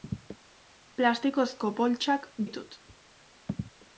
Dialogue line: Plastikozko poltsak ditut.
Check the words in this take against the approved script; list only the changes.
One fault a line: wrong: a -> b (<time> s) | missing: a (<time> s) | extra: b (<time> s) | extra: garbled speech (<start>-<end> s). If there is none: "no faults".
no faults